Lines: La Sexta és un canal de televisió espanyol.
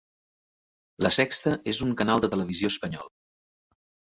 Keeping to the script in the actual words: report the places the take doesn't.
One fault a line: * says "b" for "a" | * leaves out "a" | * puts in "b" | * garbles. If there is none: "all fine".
all fine